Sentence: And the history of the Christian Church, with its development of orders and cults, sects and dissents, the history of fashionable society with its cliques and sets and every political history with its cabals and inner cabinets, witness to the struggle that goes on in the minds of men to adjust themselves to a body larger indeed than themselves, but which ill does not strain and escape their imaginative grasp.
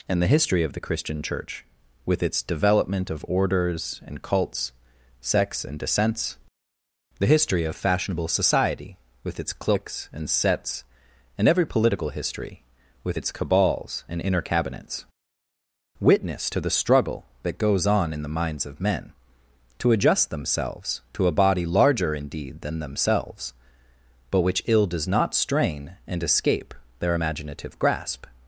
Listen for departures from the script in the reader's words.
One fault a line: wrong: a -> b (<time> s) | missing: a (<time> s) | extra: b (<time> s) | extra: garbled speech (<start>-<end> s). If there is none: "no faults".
no faults